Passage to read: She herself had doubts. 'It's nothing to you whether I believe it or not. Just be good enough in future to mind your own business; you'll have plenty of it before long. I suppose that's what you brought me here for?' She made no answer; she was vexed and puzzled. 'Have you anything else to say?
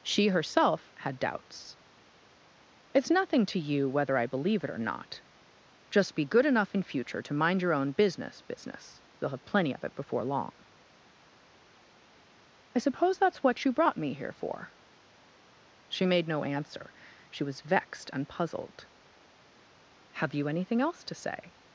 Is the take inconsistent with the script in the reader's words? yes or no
yes